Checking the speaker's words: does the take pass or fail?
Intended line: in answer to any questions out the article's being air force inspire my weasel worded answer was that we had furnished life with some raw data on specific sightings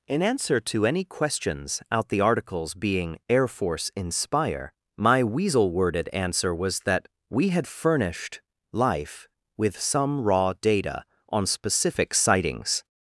pass